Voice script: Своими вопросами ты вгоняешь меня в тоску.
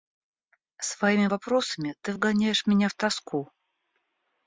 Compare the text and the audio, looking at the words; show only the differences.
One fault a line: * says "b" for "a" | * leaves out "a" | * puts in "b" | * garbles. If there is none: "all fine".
all fine